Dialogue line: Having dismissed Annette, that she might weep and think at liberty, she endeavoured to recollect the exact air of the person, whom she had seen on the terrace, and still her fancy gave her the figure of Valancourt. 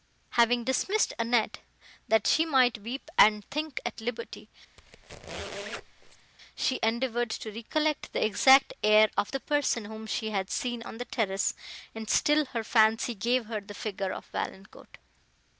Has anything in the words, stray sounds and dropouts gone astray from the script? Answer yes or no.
yes